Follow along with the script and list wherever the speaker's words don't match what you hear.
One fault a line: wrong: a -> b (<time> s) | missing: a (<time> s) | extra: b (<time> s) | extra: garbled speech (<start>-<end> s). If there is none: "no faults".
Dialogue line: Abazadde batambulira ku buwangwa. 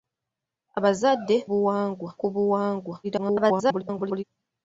wrong: batambulira -> buwangwa (1.5 s)
extra: garbled speech (3.0-4.2 s)